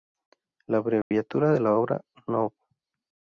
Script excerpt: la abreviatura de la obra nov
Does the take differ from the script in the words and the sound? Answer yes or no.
yes